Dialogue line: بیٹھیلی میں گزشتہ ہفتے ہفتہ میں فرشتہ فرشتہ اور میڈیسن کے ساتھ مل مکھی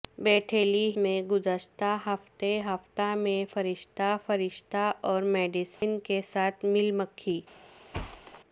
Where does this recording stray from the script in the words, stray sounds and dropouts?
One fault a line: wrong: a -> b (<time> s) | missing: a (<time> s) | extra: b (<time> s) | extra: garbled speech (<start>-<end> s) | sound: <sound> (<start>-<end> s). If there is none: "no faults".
sound: dropout (5.7-5.8 s)
sound: thud (7.9-8.4 s)